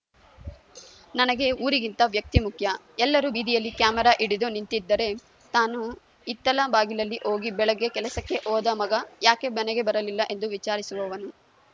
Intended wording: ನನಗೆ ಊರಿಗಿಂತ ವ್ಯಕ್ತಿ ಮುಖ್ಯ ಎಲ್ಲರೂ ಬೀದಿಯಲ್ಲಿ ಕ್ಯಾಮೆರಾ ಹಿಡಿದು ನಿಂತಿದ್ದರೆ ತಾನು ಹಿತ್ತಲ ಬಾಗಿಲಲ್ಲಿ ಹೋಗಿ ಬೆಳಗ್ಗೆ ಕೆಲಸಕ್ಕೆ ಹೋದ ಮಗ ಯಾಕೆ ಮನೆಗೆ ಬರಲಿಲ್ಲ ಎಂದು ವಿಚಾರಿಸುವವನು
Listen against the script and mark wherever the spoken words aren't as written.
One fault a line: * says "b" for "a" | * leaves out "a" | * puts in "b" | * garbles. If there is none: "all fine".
all fine